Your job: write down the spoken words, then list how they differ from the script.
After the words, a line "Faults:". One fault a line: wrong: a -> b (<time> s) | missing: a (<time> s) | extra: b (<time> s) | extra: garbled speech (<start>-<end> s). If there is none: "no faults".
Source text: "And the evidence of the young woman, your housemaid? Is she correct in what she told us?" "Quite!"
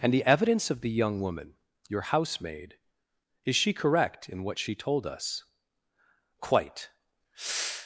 "And the evidence of the young woman, your housemaid? Is she correct in what she told us?" "Quite!"
Faults:
no faults